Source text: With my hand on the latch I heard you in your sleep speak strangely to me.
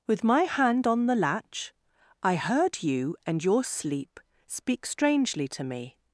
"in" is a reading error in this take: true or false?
true